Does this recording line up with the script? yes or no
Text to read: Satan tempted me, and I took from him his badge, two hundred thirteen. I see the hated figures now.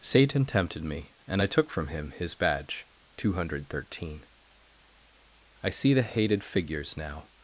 yes